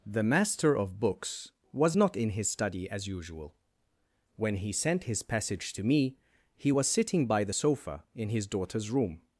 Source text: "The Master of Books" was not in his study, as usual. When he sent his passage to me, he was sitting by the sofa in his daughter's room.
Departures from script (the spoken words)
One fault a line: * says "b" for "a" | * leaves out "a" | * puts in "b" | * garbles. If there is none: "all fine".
all fine